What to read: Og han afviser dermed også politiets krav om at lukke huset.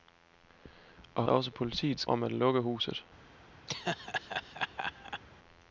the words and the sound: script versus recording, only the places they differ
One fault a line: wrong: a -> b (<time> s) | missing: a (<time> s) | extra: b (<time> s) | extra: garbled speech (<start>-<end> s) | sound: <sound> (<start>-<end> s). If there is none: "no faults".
missing: han afviser dermed (1.2 s)
missing: krav (2.0 s)
sound: laugh (3.7-5.2 s)